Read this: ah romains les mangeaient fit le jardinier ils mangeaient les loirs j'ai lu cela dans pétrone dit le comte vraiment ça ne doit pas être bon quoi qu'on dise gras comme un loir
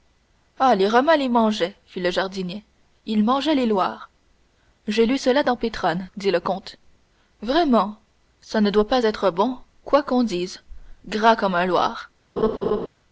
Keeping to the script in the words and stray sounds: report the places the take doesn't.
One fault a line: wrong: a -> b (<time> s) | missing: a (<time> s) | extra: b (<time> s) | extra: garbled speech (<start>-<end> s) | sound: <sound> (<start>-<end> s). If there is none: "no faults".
extra: les (0.8 s)
sound: laugh (12.4-12.9 s)